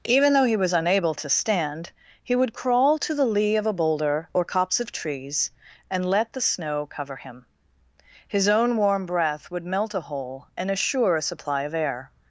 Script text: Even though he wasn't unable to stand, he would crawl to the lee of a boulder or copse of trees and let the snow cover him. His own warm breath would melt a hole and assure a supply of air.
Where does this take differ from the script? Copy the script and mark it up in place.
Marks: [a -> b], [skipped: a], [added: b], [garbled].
Even though he [wasn't -> was] unable to stand, he would crawl to the lee of a boulder or copse of trees and let the snow cover him. His own warm breath would melt a hole and assure a supply of air.